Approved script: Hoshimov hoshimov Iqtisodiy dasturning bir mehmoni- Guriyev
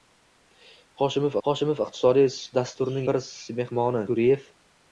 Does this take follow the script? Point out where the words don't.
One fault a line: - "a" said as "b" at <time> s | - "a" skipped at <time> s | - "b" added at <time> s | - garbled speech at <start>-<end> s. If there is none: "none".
none